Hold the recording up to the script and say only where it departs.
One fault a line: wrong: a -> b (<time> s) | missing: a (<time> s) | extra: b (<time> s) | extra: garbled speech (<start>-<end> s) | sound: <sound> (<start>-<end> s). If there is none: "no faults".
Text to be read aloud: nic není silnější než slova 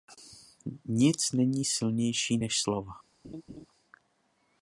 sound: laugh (3.2-3.7 s)